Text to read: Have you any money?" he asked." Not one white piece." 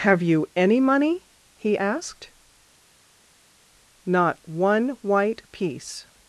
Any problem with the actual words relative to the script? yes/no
no